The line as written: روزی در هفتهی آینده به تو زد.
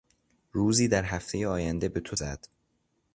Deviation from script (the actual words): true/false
false